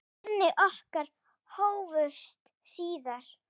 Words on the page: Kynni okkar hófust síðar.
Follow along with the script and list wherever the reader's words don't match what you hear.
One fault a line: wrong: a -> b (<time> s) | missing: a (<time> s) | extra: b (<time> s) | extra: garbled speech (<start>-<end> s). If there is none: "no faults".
no faults